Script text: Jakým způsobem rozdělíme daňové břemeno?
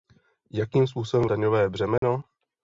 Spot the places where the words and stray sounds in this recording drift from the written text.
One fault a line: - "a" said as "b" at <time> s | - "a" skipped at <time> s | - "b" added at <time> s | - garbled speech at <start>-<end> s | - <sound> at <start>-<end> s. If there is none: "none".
- "rozdělíme" skipped at 1.2 s
- dropout at 2.0-2.0 s